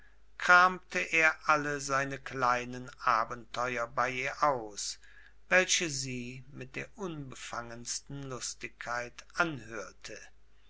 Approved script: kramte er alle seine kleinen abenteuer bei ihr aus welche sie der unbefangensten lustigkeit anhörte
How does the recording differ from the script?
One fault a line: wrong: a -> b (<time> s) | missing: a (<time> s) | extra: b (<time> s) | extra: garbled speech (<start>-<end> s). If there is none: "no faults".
extra: mit (6.5 s)